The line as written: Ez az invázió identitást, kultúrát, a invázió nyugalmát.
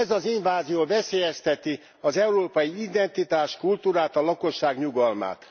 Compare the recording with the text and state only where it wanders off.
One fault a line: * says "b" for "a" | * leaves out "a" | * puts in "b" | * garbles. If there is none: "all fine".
* puts in "veszélyezteti az európai"
* says "lakosság" for "invázió"